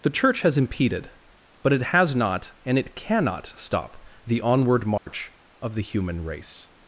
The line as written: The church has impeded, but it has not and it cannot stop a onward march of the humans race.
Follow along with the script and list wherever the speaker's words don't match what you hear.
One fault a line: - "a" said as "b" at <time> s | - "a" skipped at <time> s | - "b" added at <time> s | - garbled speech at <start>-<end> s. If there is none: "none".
- "a" said as "the" at 4.2 s
- "humans" said as "human" at 5.8 s